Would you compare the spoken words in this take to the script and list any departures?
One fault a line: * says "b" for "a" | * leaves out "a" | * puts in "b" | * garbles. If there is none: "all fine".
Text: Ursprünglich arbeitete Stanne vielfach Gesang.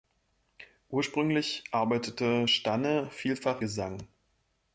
all fine